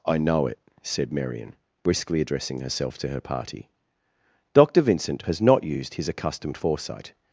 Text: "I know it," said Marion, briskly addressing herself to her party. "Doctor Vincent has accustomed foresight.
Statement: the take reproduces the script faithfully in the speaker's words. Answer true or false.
false